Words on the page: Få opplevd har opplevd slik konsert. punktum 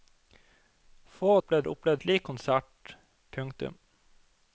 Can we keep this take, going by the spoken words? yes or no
yes